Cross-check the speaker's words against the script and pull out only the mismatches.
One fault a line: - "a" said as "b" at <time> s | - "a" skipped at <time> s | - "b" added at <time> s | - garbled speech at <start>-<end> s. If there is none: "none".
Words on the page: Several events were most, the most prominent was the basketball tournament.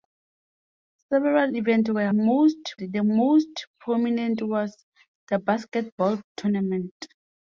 none